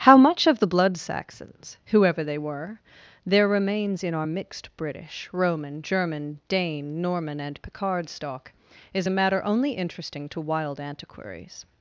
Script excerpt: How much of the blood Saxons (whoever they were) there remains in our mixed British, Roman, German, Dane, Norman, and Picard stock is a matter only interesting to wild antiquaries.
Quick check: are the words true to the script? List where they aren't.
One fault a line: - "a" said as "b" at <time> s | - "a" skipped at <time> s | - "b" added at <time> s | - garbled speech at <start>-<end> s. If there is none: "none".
none